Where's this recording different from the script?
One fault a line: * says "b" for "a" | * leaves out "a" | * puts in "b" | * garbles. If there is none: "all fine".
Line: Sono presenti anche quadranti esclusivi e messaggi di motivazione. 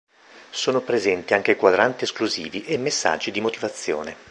all fine